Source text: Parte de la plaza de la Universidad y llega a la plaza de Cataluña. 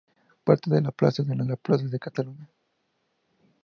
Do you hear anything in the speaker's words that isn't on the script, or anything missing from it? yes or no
yes